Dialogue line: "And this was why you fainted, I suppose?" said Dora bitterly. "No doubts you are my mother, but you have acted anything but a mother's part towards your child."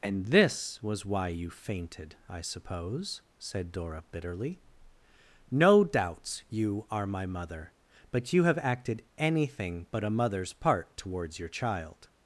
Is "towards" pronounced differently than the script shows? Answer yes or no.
no